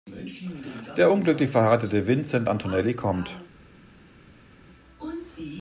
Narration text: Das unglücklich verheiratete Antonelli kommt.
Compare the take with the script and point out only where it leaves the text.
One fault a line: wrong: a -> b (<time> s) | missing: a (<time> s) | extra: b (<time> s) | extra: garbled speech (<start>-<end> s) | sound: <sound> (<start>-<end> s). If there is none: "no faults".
wrong: Das -> Der (1.0 s)
extra: Vincent (2.1 s)